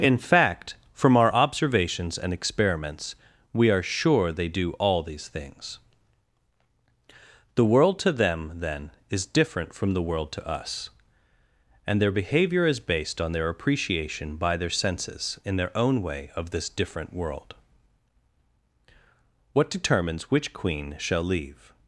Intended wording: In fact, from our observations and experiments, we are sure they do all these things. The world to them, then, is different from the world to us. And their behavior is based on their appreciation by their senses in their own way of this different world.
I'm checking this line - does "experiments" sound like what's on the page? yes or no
yes